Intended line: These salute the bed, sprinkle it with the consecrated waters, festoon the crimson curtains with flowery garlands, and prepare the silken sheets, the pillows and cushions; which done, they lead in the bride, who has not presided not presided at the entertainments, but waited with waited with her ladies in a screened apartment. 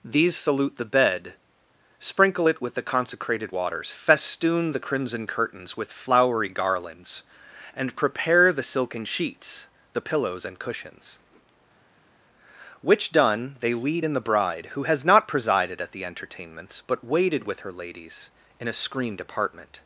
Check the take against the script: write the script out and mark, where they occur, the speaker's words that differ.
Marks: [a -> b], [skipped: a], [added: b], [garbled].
These salute the bed, sprinkle it with the consecrated waters, festoon the crimson curtains with flowery garlands, and prepare the silken sheets, the pillows and cushions; which done, they lead in the bride, who has not presided [skipped: not presided] at the entertainments, but waited with [skipped: waited with] her ladies in a screened apartment.